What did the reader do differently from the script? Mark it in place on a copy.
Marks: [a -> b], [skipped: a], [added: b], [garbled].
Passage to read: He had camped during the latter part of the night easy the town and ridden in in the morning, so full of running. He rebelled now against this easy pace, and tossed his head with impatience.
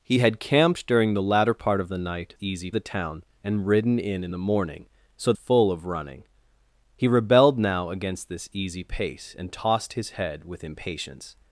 He had camped during the latter part of the night easy the town and ridden in in the morning, so full of running. He rebelled now against this easy pace, and tossed his head with impatience.